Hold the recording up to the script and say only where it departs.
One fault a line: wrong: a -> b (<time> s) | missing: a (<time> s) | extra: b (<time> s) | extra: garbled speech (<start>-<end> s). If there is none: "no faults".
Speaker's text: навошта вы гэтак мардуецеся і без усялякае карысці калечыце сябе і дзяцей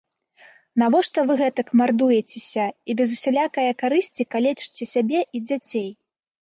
no faults